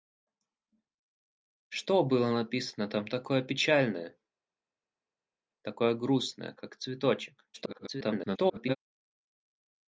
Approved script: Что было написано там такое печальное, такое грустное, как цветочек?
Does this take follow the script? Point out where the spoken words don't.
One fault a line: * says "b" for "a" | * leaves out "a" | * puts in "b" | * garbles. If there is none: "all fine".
* garbles